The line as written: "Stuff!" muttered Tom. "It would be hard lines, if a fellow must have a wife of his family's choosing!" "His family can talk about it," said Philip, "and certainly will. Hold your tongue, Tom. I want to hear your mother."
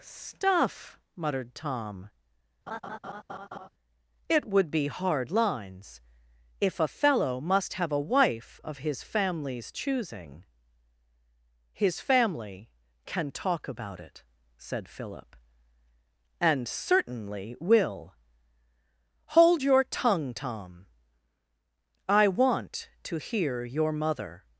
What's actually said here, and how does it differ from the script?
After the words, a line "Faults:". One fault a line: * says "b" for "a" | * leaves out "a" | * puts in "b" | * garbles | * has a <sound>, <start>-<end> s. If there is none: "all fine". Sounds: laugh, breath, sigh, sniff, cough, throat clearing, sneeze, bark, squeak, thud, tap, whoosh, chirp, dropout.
"Stuff!" muttered Tom. "It would be hard lines, if a fellow must have a wife of his family's choosing!" "His family can talk about it," said Philip, "and certainly will. Hold your tongue, Tom. I want to hear your mother."
Faults:
* has a laugh, 2.7-3.7 s